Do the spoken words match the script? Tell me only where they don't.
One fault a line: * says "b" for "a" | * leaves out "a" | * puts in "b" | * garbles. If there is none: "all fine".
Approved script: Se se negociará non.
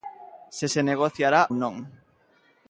all fine